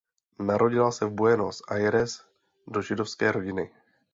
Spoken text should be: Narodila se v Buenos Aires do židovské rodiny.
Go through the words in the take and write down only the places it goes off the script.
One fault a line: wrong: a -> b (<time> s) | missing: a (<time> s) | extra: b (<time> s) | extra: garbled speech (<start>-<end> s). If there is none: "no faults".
no faults